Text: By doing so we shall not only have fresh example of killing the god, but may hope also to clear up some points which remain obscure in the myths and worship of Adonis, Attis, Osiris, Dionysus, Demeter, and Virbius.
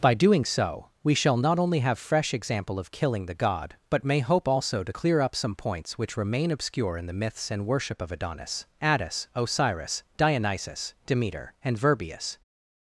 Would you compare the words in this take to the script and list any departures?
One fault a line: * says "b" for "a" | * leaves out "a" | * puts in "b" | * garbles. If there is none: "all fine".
all fine